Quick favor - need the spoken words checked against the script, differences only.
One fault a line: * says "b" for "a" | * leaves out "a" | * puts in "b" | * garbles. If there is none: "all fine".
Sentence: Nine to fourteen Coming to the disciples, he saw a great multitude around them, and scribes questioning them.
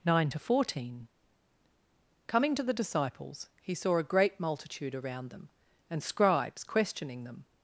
all fine